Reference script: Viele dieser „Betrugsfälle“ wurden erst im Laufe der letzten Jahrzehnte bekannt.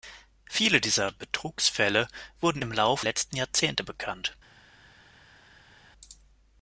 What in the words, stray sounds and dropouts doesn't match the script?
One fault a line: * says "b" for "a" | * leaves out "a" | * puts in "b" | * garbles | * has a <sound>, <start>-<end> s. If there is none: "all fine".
* leaves out "erst"
* leaves out "der"